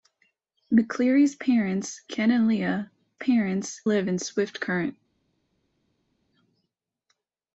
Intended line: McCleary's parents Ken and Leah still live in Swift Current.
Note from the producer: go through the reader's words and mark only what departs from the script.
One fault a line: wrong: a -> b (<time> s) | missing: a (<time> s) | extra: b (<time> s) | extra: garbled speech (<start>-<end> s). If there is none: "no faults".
wrong: still -> parents (3.2 s)